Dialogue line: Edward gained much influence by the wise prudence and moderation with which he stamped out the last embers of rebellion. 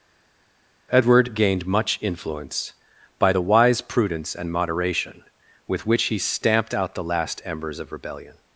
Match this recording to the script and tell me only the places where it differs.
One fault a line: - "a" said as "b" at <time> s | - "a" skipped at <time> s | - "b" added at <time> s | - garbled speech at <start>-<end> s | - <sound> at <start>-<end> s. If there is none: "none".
none